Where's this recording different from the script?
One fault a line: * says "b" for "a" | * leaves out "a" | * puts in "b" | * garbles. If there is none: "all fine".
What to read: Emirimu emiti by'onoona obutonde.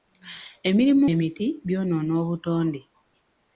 all fine